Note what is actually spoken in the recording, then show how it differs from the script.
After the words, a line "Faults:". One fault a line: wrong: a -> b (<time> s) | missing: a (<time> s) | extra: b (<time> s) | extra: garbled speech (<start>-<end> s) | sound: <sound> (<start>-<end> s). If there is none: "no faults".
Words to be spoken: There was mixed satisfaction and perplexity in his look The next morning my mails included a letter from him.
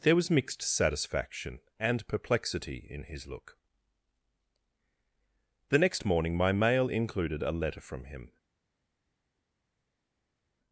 There was mixed satisfaction and perplexity in his look The next morning my mail included a letter from him.
Faults:
wrong: mails -> mail (6.5 s)